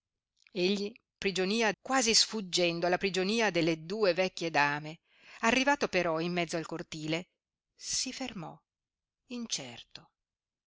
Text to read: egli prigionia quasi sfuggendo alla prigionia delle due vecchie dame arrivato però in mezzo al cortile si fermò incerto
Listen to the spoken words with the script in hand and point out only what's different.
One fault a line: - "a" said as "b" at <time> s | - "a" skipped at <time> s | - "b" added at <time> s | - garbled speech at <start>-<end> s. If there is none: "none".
none